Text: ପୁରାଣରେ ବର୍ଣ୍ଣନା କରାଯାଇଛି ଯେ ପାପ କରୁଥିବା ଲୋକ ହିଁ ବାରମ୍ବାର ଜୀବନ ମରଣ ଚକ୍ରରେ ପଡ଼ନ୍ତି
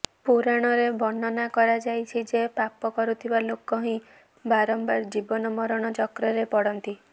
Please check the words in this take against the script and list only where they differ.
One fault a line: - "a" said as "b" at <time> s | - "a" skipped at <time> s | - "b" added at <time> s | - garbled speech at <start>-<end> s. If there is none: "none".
none